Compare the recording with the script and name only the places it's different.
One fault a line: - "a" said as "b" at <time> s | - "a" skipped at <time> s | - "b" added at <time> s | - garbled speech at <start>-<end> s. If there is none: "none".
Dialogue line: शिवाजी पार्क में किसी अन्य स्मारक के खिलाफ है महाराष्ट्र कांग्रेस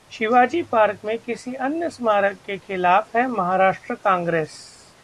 none